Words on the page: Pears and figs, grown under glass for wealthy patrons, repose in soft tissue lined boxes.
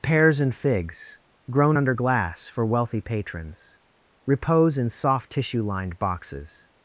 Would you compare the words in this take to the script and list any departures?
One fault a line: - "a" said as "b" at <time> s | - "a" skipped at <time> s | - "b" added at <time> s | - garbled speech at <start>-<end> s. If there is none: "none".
none